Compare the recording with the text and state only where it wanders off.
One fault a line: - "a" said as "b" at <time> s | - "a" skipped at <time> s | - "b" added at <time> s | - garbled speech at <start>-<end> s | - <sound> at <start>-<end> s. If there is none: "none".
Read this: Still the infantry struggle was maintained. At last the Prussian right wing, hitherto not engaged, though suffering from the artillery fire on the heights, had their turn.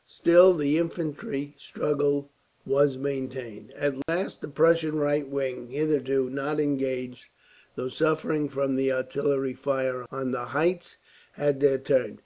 - dropout at 4.0-4.1 s